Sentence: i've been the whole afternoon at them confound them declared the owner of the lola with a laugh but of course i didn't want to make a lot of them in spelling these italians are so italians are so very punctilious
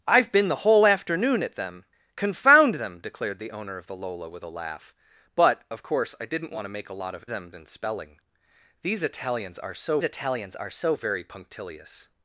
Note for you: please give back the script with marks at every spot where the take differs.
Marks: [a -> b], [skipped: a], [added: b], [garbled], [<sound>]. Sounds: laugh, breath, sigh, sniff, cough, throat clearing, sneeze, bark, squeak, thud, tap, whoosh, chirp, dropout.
i've been the whole afternoon at them confound them declared the owner of the lola with a laugh but of course i didn't want to make a lot of them in spelling these italians are so italians are so very punctilious